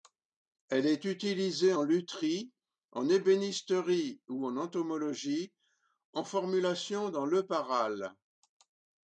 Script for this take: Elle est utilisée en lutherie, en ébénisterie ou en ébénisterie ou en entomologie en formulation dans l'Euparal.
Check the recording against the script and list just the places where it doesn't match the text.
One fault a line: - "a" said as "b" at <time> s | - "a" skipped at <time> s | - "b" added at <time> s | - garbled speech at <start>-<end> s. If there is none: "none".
- "ébénisterie ou en" skipped at 4.6 s